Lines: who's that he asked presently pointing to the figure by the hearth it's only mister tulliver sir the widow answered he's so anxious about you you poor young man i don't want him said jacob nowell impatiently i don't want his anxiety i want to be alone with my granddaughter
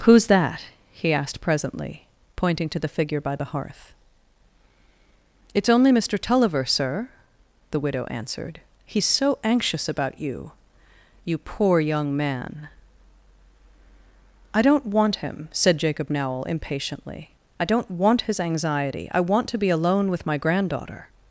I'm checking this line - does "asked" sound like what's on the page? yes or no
yes